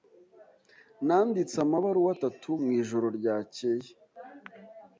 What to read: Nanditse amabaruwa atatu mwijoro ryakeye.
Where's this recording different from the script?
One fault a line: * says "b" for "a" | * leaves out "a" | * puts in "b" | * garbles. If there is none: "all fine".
all fine